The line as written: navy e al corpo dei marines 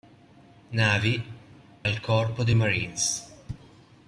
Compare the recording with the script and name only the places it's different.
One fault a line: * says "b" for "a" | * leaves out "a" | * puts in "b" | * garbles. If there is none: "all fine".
* leaves out "e"